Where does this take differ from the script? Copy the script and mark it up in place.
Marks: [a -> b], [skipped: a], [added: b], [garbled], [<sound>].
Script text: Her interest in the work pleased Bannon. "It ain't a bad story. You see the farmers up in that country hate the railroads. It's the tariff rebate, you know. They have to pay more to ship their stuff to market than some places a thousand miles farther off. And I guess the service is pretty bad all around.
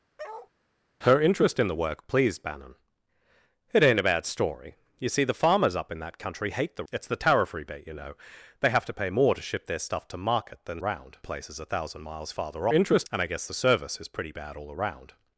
[bark] Her interest in the work pleased Bannon. "It ain't a bad story. You see the farmers up in that country hate the [skipped: railroads.] It's the tariff rebate, you know. They have to pay more to ship their stuff to market than [some -> around] places a thousand miles farther [off. -> interest] And I guess the service is pretty bad all around.